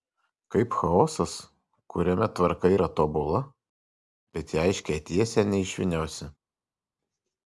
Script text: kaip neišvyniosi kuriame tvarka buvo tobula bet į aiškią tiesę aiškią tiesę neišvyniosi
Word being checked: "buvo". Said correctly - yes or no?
no